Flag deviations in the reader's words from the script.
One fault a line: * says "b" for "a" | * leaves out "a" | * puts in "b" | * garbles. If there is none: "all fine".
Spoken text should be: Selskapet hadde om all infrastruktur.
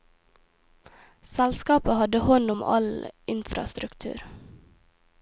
* puts in "hånd"